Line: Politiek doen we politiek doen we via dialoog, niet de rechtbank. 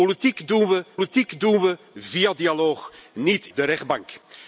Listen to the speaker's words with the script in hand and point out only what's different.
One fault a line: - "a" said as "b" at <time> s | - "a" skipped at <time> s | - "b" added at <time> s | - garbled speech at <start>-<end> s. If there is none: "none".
none